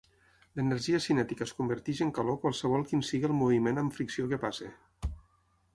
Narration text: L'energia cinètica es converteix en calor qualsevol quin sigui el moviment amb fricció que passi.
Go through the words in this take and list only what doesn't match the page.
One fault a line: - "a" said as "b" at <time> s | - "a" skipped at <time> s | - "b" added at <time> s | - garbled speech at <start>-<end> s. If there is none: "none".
none